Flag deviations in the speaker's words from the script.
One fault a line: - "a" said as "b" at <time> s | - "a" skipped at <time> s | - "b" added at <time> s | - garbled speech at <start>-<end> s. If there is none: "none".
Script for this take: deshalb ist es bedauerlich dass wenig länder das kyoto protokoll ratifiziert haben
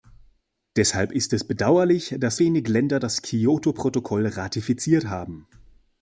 none